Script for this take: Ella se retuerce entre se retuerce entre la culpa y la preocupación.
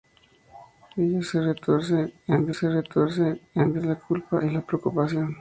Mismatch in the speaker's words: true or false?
false